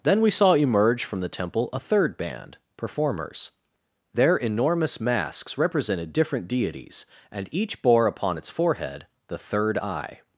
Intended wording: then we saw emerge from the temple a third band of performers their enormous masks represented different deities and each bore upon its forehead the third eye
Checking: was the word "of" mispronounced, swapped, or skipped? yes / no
yes